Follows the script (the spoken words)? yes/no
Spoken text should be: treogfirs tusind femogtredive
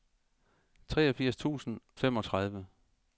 yes